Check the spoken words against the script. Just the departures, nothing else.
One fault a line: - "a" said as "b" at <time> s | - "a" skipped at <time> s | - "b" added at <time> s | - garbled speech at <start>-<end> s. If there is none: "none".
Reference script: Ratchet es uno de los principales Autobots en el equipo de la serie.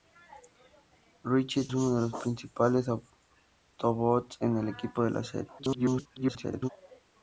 - "es" skipped at 1.7 s
- garbled speech at 5.6-6.7 s